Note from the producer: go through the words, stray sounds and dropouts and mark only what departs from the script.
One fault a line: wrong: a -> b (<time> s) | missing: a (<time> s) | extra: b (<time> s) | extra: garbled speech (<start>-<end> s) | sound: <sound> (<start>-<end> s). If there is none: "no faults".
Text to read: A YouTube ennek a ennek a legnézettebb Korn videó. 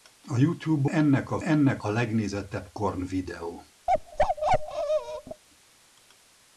sound: bark (3.9-5.4 s)